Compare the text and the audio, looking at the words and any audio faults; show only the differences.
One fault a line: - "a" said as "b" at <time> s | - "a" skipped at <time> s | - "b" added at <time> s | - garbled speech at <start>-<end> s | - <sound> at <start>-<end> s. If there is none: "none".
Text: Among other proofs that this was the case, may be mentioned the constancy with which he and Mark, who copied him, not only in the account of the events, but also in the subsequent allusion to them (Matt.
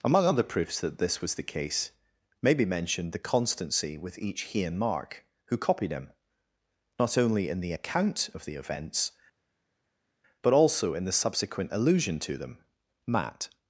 - "which" said as "each" at 4.2 s